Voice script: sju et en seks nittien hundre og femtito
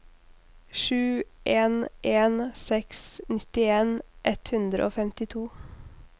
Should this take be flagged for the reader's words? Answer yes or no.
yes